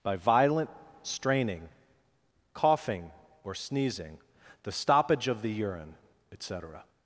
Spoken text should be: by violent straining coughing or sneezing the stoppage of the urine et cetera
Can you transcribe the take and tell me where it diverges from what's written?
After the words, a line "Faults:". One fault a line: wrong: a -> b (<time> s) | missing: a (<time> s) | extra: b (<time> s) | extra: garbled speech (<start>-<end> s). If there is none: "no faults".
by violent straining coughing or sneezing the stoppage of the urine et cetera
Faults:
no faults